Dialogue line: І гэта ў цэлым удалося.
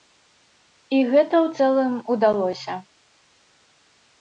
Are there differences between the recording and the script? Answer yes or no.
no